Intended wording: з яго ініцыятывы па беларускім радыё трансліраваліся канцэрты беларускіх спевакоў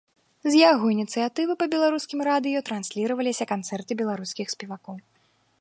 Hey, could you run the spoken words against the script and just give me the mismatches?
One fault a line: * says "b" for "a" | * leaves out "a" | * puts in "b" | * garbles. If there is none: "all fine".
all fine